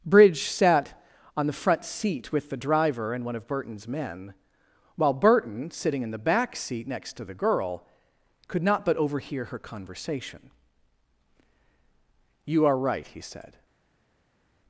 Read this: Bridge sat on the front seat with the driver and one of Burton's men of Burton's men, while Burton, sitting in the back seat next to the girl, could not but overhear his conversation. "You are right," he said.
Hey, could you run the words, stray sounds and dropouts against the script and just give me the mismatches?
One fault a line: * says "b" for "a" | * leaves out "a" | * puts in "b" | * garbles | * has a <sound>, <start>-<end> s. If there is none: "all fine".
* leaves out "of Burton's men"
* says "her" for "his"